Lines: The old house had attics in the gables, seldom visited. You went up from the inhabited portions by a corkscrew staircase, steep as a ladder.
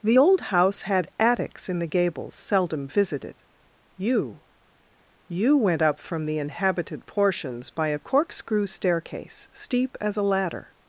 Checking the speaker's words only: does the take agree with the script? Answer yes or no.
no